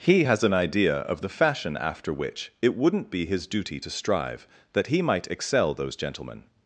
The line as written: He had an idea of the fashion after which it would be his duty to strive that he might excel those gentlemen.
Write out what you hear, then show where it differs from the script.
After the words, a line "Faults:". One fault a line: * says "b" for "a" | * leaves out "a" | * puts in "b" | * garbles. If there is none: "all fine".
He has an idea of the fashion after which it wouldn't be his duty to strive that he might excel those gentlemen.
Faults:
* says "has" for "had"
* says "wouldn't" for "would"